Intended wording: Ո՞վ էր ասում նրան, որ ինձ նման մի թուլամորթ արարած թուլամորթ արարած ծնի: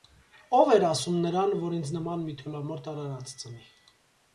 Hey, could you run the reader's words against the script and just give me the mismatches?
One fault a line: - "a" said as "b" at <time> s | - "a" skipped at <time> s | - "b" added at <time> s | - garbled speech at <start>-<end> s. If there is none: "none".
- "թուլամորթ արարած" skipped at 3.4 s